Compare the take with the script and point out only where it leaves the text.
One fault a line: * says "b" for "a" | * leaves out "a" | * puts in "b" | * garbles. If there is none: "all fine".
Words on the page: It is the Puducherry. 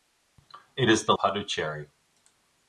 all fine